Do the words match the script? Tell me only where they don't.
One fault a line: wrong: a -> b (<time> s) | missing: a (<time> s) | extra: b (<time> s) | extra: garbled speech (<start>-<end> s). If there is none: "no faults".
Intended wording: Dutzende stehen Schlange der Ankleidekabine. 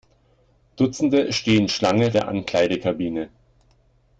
no faults